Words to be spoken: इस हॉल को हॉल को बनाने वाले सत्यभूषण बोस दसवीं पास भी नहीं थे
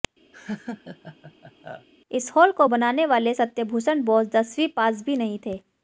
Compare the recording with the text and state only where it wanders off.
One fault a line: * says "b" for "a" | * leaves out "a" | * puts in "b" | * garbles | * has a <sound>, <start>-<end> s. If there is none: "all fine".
* has a laugh, 0.3-1.9 s
* leaves out "हॉल को"